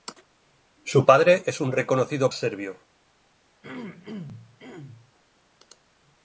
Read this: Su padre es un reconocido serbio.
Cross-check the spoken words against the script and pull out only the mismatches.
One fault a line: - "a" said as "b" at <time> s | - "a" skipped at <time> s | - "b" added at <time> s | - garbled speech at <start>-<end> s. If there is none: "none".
none